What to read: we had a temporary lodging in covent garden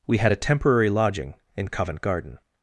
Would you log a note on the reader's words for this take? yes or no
no